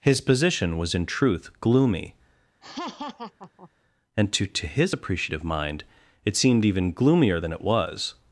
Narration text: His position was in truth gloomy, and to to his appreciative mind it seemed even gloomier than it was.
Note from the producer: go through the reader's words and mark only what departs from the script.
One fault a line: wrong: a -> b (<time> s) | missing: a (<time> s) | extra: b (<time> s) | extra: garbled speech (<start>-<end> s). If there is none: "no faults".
no faults